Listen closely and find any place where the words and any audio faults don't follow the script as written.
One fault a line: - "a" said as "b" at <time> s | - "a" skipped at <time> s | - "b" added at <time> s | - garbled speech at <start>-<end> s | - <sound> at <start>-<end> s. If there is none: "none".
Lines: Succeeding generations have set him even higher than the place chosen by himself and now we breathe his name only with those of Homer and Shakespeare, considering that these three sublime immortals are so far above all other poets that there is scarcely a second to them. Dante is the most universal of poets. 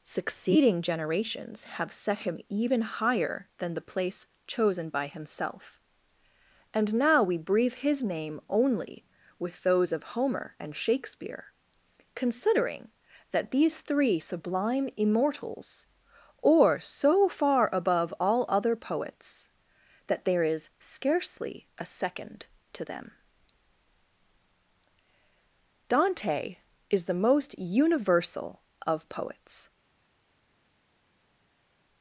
- "are" said as "or" at 16.4 s